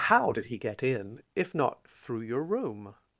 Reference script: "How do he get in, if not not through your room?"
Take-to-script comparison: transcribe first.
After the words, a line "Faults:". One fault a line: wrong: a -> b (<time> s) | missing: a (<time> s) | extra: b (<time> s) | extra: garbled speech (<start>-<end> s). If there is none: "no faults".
"How did he get in, if not through your room?"
Faults:
wrong: do -> did (0.3 s)
missing: not (1.8 s)